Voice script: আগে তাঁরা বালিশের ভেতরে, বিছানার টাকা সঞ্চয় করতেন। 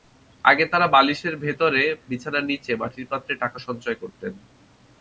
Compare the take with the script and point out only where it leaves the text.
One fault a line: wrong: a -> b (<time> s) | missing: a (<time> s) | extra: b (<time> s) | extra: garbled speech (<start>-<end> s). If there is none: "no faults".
extra: নিচে মাটির পাত্রে (2.4 s)